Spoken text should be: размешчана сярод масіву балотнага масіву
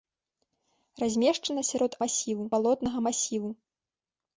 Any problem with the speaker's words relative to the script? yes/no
no